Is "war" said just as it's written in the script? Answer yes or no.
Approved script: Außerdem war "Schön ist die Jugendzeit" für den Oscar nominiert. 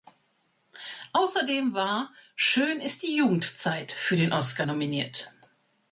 yes